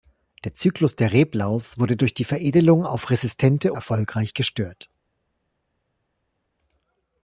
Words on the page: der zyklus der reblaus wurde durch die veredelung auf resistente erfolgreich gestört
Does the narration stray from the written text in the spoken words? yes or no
no